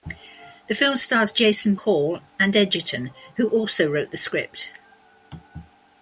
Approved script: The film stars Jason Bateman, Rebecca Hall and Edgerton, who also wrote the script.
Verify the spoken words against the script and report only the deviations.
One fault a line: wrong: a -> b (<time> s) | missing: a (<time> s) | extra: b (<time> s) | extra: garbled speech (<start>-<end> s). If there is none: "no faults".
missing: Bateman Rebecca (1.8 s)